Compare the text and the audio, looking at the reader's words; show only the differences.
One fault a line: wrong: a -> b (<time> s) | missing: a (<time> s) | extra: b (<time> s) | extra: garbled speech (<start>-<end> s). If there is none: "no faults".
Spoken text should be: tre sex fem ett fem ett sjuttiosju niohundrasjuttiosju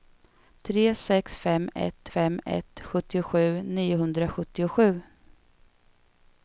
no faults